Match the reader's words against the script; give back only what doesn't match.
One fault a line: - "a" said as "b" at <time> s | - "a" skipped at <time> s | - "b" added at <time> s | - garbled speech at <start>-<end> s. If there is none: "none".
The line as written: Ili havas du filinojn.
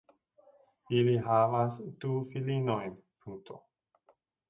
none